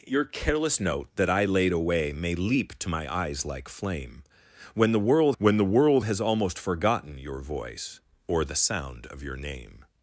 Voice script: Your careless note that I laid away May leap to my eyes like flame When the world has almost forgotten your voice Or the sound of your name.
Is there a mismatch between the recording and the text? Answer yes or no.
yes